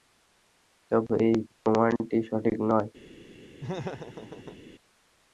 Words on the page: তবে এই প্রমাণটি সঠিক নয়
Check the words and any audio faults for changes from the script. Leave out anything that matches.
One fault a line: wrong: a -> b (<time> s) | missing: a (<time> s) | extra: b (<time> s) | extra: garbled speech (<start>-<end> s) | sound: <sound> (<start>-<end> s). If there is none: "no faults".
sound: laugh (3.6-4.6 s)